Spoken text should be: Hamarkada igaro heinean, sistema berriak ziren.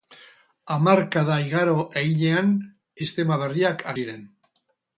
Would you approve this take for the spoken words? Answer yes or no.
yes